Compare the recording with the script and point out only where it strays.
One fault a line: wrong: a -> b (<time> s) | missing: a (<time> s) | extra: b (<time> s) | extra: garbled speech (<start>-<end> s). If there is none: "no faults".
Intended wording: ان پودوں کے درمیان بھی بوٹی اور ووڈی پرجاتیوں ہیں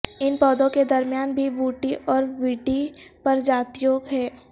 no faults